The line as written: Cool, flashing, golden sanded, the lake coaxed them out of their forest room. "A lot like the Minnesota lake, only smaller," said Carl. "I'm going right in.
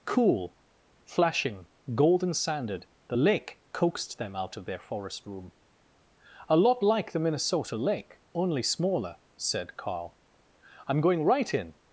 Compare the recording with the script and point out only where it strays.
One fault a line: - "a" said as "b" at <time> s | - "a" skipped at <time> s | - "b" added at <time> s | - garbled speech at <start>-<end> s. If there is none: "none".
none